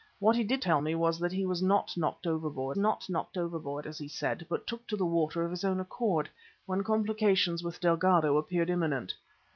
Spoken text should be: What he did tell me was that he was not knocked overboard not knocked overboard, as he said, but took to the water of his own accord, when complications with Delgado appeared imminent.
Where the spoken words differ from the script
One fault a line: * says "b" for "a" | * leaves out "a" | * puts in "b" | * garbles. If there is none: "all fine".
all fine